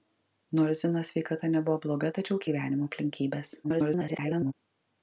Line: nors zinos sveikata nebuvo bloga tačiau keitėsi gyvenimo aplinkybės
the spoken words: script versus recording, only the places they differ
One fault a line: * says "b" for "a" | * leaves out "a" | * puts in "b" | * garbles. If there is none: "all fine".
* leaves out "keitėsi"
* garbles